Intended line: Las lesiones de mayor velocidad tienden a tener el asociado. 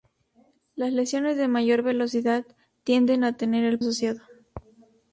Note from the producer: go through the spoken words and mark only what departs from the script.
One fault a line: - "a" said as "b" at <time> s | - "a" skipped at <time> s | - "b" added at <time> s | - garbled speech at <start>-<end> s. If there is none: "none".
none